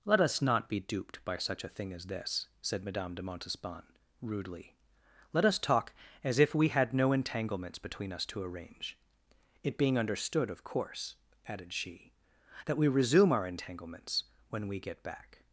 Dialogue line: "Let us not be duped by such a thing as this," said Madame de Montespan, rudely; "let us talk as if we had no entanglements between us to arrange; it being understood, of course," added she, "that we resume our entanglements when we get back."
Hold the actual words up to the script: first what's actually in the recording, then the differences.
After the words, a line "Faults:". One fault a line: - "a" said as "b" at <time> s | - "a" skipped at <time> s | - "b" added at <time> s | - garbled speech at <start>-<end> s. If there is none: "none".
"Let us not be duped by such a thing as this," said Madame de Montespan, rudely; "let us talk as if we had no entanglements between us to arrange; it being understood, of course," added she, "that we resume our entanglements when we get back."
Faults:
none